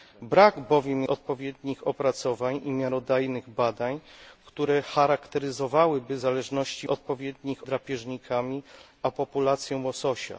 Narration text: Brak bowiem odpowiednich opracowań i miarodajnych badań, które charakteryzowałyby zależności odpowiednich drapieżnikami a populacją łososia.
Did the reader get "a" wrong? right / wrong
right